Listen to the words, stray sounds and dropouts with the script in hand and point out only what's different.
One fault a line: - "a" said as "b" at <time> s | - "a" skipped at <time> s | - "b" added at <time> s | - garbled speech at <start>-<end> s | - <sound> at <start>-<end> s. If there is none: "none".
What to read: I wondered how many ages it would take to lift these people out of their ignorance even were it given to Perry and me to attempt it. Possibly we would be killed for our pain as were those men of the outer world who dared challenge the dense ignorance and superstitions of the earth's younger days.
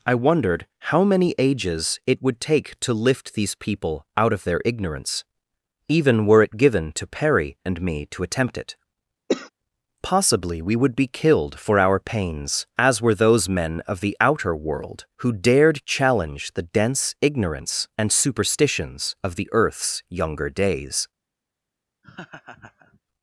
- cough at 9.3-9.5 s
- "pain" said as "pains" at 12.0 s
- laugh at 22.0-23.0 s